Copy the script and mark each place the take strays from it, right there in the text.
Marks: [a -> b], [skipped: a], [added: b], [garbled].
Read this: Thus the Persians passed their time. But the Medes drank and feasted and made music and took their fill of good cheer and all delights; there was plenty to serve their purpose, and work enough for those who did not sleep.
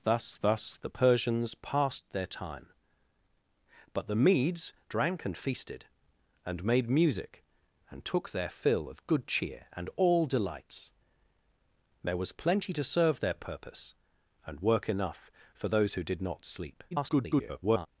Thus [added: thus] the Persians passed their time. But the Medes drank and feasted and made music and took their fill of good cheer and all delights; there was plenty to serve their purpose, and work enough for those who did not sleep. [garbled]